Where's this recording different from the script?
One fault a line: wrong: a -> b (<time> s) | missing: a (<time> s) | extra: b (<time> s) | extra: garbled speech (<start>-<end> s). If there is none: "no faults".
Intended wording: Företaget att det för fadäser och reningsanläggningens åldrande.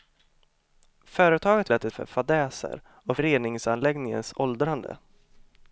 no faults